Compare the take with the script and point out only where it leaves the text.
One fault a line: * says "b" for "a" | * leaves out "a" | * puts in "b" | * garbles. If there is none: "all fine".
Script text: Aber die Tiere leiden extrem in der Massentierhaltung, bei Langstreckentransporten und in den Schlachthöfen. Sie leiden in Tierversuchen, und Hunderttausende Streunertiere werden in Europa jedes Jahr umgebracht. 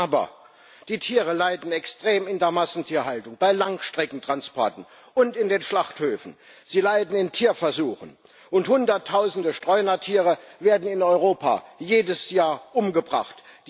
all fine